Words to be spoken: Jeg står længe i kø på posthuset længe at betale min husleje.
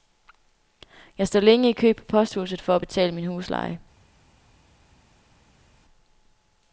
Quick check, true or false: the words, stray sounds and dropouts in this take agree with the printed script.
false